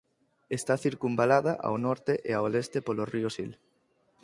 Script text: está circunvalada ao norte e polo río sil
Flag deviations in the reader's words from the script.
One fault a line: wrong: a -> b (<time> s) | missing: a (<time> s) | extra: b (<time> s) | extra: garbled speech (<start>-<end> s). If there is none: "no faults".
extra: ao leste (2.4 s)